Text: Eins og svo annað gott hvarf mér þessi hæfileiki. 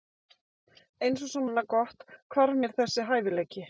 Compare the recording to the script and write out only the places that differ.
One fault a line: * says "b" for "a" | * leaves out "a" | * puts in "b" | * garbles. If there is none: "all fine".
all fine